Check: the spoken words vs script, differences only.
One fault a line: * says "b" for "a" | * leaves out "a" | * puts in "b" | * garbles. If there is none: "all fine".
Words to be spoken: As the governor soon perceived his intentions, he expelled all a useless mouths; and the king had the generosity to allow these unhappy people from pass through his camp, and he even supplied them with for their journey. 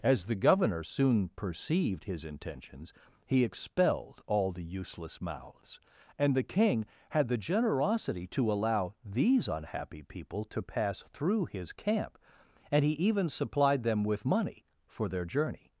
* says "the" for "a"
* says "to" for "from"
* puts in "money"